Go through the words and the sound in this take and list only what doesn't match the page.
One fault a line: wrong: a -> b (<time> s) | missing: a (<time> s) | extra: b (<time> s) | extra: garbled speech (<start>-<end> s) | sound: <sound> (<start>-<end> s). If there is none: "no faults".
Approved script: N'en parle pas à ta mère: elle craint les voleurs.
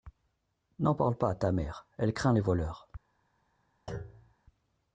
sound: thud (3.9-4.3 s)